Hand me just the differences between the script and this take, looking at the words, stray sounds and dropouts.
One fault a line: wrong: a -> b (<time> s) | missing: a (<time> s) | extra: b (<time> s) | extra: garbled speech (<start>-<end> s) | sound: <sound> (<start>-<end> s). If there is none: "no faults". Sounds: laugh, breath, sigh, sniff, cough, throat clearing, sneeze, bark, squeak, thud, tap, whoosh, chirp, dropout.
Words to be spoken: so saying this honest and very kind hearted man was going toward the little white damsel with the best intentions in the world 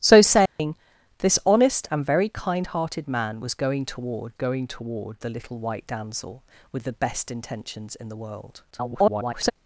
sound: dropout (0.5-0.6 s)
extra: going toward (4.3 s)
extra: garbled speech (8.7-9.5 s)